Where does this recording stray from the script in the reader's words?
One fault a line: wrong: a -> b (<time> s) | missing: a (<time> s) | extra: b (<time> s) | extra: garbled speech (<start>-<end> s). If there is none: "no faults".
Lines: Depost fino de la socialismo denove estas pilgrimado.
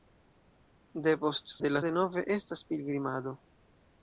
missing: fino (1.5 s)
missing: socialismo (1.8 s)